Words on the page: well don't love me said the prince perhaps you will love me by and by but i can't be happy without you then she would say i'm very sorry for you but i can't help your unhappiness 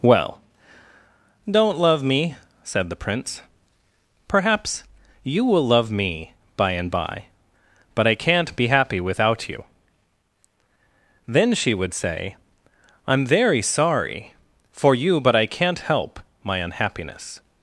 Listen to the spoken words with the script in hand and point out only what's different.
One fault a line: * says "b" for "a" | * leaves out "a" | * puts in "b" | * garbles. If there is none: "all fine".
* says "my" for "your"